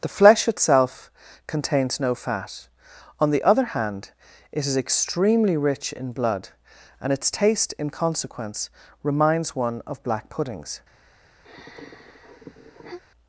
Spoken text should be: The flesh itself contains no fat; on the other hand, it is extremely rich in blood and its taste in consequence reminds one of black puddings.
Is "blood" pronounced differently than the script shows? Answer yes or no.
no